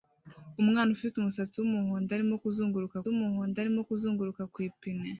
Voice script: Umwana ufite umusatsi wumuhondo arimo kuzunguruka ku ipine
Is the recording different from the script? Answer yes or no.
yes